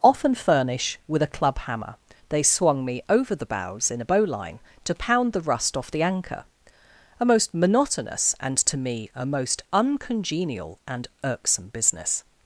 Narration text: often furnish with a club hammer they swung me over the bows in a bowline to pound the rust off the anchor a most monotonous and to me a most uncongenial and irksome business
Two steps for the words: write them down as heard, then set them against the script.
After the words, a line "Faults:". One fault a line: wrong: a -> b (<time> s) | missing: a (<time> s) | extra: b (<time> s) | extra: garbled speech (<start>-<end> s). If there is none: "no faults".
often furnish with a club hammer they swung me over the bows in a bowline to pound the rust off the anchor a most monotonous and to me a most uncongenial and irksome business
Faults:
no faults